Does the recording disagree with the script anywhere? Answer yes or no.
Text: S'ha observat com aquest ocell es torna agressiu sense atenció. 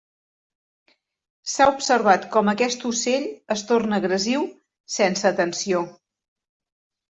no